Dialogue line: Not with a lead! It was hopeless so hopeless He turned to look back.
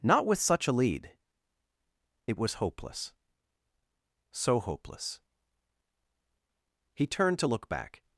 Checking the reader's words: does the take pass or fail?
fail